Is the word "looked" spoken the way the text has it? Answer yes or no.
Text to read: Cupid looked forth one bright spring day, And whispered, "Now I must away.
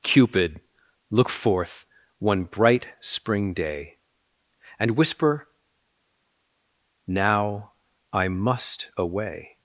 no